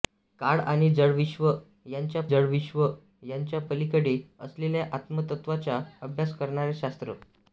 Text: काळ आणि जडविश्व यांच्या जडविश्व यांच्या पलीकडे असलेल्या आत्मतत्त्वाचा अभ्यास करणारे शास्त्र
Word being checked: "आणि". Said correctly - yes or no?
yes